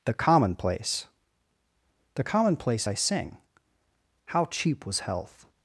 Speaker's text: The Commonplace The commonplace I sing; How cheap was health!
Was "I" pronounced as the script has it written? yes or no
yes